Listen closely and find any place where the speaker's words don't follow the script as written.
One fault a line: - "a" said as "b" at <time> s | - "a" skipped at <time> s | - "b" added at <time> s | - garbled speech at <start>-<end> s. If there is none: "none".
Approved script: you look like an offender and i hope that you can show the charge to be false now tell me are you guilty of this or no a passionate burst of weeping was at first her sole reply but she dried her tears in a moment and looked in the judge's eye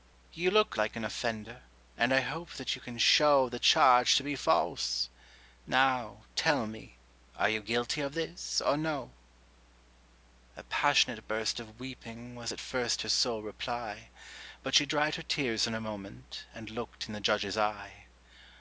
none